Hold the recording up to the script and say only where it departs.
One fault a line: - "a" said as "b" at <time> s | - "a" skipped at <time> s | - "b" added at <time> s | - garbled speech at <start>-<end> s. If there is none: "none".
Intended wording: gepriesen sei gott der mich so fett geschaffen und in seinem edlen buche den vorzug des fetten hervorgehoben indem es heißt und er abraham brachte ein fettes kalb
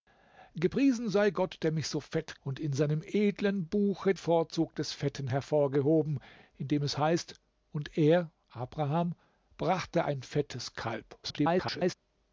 - "geschaffen" skipped at 2.4 s
- "den" skipped at 4.1 s
- garbled speech at 11.2-12.0 s